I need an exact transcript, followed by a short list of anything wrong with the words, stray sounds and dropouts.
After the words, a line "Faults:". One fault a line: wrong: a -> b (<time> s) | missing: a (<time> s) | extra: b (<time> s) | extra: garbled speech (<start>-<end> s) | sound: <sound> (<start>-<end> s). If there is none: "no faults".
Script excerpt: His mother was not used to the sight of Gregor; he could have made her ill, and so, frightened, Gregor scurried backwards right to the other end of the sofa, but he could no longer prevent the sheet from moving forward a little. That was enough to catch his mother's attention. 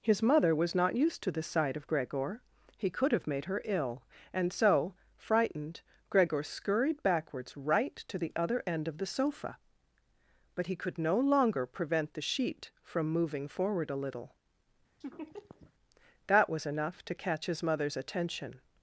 His mother was not used to the sight of Gregor; he could have made her ill, and so, frightened, Gregor scurried backwards right to the other end of the sofa, but he could no longer prevent the sheet from moving forward a little. That was enough to catch his mother's attention.
Faults:
sound: laugh (15.0-15.7 s)